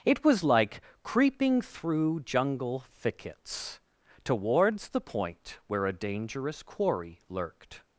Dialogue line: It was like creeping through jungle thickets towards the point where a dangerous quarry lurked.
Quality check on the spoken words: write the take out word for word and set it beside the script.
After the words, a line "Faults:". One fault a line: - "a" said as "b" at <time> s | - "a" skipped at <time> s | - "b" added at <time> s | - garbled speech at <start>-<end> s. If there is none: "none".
It was like creeping through jungle thickets towards the point where a dangerous quarry lurked.
Faults:
none